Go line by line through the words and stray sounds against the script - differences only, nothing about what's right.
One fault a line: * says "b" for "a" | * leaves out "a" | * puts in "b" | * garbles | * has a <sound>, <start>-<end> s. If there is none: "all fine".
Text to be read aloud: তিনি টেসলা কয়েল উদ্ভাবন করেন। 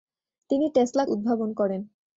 * leaves out "কয়েল"